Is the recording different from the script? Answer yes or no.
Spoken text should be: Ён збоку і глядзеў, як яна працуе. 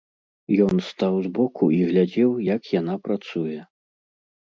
yes